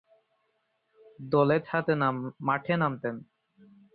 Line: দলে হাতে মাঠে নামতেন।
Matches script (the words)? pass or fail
pass